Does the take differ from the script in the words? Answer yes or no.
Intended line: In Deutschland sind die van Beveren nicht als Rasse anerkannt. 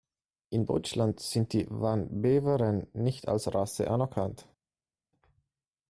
no